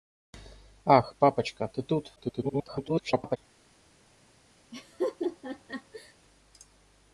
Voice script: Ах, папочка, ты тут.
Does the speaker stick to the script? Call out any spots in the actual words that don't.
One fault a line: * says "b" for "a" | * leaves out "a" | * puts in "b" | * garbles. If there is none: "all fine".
* garbles